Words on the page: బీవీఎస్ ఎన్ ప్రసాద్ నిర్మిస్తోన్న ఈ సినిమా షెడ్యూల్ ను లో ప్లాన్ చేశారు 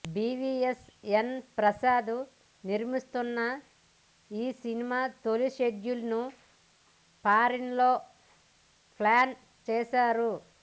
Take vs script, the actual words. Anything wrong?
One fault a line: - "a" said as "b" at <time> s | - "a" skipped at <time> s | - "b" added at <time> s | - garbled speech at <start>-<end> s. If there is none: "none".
- "తొలి" added at 5.2 s
- "ఫారిన్" added at 7.2 s